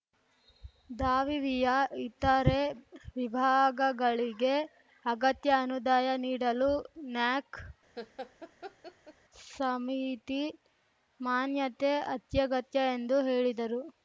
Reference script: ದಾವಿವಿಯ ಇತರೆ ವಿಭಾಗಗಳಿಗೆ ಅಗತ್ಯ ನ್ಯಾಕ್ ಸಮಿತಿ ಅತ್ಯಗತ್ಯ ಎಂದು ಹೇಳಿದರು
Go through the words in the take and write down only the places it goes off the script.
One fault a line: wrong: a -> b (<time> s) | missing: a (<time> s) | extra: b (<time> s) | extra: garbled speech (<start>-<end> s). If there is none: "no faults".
extra: ಅನುದಾಯ ನೀಡಲು (5.6 s)
extra: ಮಾನ್ಯತೆ (11.2 s)